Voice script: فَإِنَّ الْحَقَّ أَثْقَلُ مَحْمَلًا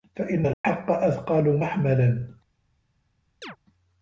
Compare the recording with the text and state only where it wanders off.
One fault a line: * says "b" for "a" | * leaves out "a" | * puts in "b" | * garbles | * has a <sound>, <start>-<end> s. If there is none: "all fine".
* has a dropout, 0.5-0.6 s
* has a chirp, 3.4-3.6 s